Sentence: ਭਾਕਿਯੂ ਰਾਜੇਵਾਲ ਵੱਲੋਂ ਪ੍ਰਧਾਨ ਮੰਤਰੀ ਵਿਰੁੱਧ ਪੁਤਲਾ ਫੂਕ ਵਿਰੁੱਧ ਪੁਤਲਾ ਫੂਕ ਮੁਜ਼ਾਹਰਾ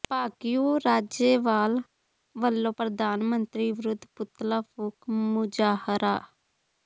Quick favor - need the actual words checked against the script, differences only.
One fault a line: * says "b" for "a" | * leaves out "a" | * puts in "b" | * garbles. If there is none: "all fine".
* leaves out "ਵਿਰੁੱਧ ਪੁਤਲਾ ਫੂਕ"